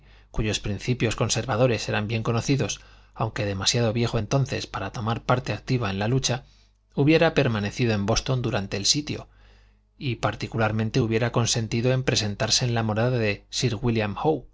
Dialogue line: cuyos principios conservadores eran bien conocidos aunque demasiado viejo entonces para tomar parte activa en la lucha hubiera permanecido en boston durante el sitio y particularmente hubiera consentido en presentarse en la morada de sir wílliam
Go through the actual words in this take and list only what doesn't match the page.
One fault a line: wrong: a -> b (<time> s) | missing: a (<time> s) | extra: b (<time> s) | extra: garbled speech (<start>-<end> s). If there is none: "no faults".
no faults